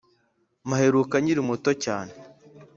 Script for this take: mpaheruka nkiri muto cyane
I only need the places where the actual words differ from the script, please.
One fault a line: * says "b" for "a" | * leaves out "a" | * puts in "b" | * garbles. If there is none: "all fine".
all fine